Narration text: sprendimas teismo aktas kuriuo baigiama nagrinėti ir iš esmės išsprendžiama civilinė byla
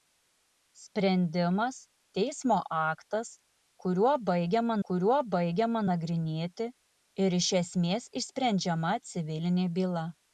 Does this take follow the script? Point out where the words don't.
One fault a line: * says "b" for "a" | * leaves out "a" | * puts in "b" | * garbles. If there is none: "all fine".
* puts in "kuriuo baigiama"